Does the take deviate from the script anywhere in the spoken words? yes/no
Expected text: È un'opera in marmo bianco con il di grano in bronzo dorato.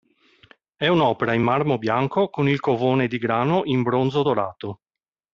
yes